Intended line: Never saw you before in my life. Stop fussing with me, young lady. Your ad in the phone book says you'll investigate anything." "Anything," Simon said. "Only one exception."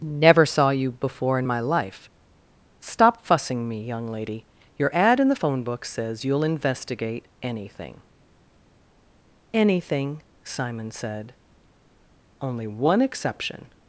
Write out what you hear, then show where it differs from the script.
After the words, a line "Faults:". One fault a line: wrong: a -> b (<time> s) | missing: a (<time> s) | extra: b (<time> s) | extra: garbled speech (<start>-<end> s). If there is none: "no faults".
Never saw you before in my life. Stop fussing me, young lady. Your ad in the phone book says you'll investigate anything." "Anything," Simon said. "Only one exception."
Faults:
missing: with (3.7 s)